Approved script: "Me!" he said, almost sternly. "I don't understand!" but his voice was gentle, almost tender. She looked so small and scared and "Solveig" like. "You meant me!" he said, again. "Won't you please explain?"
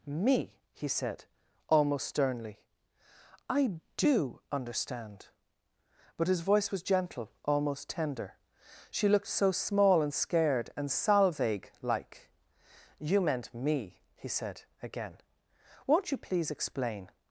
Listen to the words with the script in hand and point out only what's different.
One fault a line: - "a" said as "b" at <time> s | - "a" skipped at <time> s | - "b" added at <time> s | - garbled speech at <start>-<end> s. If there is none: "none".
- "don't" said as "do" at 4.0 s